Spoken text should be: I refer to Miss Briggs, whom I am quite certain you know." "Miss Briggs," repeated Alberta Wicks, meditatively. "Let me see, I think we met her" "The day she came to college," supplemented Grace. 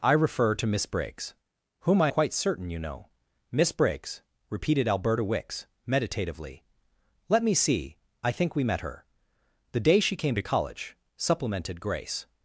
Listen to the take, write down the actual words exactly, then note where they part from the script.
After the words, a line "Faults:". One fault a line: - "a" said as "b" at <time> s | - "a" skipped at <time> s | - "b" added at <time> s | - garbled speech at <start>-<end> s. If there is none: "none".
I refer to Miss Briggs, whom I quite certain you know." "Miss Briggs," repeated Alberta Wicks, meditatively. "Let me see, I think we met her" "The day she came to college," supplemented Grace.
Faults:
- "am" skipped at 2.1 s